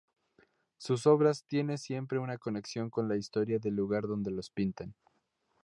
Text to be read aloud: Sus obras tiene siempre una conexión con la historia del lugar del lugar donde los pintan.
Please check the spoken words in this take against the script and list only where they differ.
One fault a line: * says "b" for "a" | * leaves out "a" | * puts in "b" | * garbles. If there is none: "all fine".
* leaves out "del lugar"